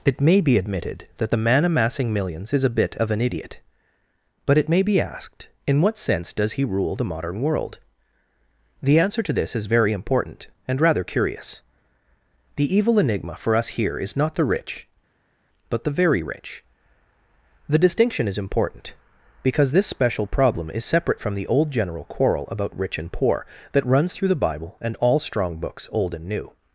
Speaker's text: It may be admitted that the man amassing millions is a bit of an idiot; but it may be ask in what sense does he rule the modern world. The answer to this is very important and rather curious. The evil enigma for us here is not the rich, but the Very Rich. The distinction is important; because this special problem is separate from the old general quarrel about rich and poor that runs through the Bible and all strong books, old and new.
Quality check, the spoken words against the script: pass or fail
fail